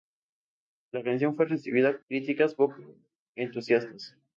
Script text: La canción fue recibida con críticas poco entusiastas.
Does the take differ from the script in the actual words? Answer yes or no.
yes